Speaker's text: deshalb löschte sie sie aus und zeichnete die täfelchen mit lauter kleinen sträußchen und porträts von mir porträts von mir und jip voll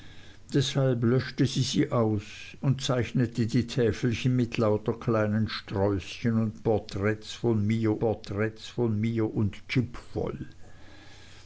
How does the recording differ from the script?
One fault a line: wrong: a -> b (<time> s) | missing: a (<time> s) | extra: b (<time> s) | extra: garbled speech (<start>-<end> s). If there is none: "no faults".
no faults